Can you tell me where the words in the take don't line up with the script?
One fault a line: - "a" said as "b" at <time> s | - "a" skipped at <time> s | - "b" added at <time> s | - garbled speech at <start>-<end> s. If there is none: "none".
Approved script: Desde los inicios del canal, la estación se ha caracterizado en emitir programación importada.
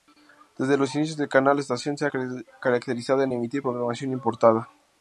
none